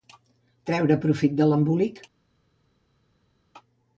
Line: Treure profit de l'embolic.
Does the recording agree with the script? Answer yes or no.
yes